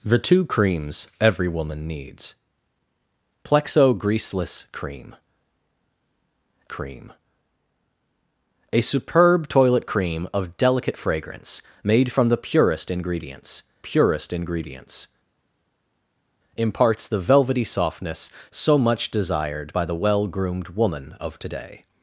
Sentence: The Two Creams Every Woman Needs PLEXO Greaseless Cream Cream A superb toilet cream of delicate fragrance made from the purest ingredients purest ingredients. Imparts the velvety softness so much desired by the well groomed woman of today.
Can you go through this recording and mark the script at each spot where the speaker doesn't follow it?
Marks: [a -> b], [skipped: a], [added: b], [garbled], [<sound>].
The Two Creams Every Woman Needs PLEXO Greaseless Cream Cream A superb toilet cream of delicate fragrance made from the purest ingredients purest ingredients. Imparts the velvety softness so much desired by the well groomed woman of today.